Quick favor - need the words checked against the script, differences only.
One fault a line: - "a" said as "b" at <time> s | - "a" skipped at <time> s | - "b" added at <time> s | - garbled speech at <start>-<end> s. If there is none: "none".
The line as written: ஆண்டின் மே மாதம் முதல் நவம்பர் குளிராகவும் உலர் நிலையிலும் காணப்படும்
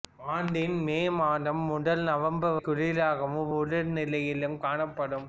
none